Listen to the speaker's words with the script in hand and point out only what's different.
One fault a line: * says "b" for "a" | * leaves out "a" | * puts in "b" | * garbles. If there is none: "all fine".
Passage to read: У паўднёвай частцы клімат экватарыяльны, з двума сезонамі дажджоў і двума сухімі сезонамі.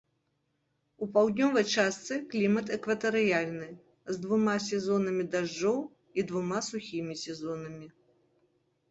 all fine